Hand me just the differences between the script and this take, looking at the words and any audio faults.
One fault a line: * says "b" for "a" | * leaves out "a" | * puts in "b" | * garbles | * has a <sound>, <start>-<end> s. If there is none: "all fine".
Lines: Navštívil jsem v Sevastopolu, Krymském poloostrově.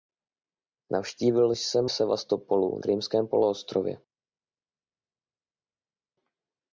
all fine